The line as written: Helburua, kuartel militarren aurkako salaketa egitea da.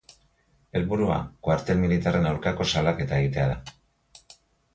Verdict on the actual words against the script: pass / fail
pass